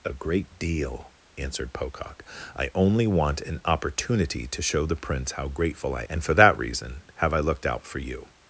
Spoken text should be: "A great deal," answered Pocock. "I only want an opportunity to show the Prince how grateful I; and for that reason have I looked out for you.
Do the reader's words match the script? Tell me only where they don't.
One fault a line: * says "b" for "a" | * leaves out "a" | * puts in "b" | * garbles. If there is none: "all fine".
all fine